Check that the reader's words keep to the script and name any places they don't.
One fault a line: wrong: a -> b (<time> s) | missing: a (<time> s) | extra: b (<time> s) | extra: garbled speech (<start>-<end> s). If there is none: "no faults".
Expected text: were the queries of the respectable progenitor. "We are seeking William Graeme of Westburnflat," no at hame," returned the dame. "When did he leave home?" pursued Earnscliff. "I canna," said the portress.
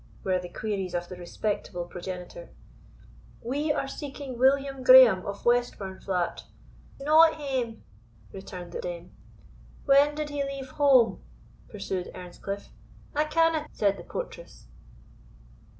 no faults